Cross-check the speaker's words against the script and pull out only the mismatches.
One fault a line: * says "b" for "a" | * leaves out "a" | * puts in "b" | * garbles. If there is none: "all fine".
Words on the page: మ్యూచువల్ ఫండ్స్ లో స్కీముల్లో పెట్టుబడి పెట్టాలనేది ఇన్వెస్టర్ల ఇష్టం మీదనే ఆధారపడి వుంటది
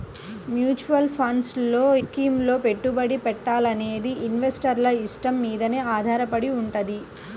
all fine